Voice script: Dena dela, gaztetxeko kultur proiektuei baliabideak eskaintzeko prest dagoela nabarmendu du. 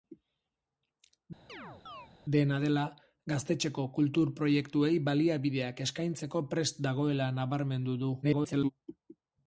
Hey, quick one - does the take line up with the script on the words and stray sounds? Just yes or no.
no